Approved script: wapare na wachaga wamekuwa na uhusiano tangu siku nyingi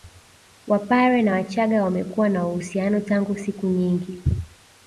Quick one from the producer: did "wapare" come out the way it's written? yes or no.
yes